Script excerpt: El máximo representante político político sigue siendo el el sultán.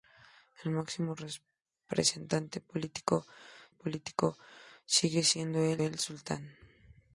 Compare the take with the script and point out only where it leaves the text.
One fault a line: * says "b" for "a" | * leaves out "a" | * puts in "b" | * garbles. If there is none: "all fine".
all fine